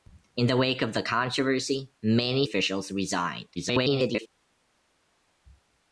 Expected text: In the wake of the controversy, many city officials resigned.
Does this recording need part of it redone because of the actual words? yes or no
yes